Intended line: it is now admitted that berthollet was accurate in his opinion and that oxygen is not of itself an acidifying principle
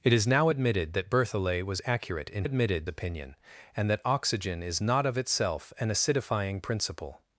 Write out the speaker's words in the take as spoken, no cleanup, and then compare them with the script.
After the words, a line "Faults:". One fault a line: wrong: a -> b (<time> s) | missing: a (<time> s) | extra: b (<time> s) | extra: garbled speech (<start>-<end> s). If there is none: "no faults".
it is now admitted that berthollet was accurate in admitted opinion and that oxygen is not of itself an acidifying principle
Faults:
wrong: his -> admitted (2.4 s)